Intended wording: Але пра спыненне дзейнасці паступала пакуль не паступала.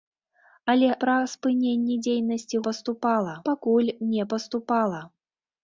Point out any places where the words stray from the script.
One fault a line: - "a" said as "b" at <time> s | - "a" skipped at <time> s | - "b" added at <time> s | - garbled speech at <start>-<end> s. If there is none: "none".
none